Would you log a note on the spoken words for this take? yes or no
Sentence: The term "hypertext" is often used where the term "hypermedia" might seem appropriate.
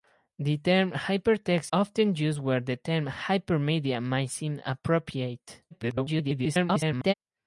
yes